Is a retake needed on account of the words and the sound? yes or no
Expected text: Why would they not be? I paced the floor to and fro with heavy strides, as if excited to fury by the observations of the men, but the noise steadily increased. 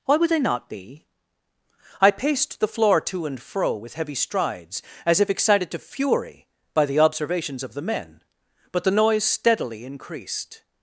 no